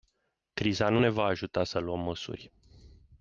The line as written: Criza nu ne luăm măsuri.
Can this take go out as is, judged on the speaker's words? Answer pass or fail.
fail